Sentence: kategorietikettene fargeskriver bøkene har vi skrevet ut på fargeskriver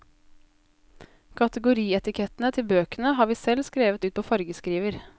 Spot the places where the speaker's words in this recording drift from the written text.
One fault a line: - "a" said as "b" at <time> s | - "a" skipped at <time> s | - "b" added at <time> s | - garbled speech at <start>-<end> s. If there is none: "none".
- "fargeskriver" said as "til" at 2.5 s
- "selv" added at 3.4 s